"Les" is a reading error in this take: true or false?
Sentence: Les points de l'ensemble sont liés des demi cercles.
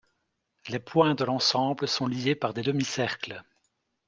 false